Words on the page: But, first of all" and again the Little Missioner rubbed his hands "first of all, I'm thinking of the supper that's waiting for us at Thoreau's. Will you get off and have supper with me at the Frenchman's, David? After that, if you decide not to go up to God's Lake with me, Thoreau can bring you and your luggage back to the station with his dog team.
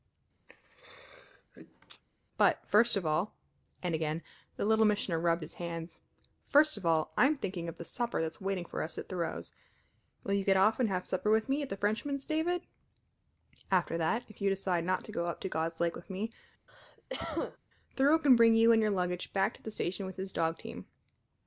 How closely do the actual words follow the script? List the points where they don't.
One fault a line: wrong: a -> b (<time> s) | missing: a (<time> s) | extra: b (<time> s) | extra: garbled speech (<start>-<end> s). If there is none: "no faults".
no faults